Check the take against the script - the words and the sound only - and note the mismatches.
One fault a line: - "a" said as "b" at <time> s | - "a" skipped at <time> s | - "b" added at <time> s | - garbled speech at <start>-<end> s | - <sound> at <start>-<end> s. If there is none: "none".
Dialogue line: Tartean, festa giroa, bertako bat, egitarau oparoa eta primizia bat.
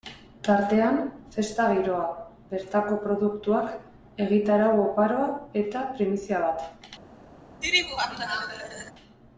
- "bat" said as "produktuak" at 3.1 s
- laugh at 7.6-8.9 s